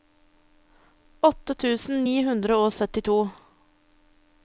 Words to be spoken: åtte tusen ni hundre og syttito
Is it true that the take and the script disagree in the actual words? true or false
false